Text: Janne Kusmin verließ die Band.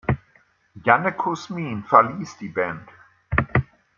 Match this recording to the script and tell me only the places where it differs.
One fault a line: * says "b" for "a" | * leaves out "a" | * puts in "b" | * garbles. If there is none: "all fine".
all fine